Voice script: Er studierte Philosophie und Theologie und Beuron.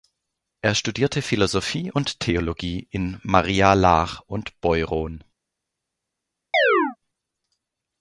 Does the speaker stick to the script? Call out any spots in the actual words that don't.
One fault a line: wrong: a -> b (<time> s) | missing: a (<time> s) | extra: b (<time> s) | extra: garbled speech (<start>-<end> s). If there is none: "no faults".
extra: in Maria Laach (2.9 s)